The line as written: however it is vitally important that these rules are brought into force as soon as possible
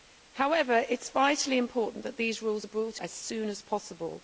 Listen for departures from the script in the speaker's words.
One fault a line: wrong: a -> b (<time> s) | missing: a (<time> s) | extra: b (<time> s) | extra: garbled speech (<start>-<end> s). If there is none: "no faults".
missing: into force (3.0 s)